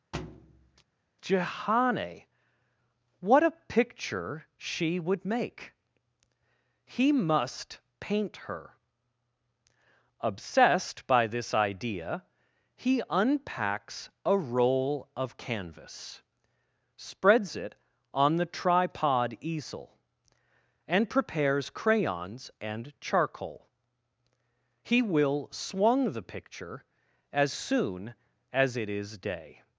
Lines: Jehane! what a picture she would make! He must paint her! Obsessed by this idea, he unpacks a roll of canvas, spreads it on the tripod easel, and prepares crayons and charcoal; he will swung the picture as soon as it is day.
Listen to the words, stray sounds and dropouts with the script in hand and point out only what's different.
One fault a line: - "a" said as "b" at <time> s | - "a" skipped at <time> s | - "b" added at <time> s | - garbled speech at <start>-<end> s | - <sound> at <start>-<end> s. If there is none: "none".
- thud at 0.1-0.8 s